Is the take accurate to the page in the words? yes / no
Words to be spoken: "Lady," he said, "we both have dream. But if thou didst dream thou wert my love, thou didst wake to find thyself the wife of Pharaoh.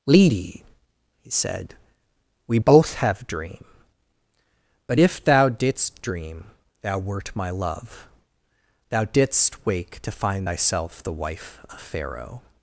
yes